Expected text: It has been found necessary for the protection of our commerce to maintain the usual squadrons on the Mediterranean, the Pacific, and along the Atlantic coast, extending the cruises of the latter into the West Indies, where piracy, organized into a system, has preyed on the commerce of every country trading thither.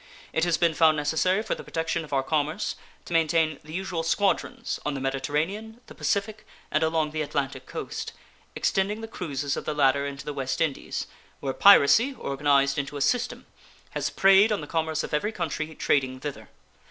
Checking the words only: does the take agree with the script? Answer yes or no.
yes